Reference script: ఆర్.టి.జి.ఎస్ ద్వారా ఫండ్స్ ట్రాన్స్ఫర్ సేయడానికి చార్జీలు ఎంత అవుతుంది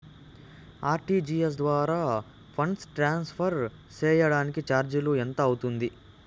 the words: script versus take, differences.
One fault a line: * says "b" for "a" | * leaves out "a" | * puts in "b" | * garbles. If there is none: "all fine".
all fine